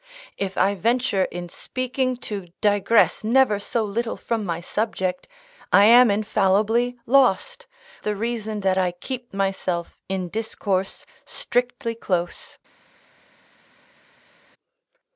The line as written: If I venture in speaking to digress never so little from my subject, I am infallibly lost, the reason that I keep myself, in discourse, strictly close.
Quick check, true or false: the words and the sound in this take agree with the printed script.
true